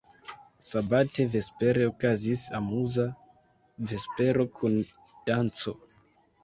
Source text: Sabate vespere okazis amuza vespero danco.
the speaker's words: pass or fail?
fail